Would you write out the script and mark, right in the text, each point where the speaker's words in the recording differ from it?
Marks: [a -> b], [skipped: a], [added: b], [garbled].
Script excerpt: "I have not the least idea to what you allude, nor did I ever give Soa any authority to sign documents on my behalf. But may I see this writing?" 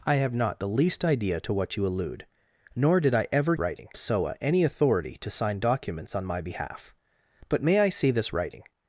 "I have not the least idea to what you allude, nor did I ever [give -> writing] Soa any authority to sign documents on my behalf. But may I see this writing?"